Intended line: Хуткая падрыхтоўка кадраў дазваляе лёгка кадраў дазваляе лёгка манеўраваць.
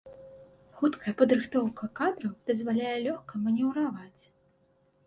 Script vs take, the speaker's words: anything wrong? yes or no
yes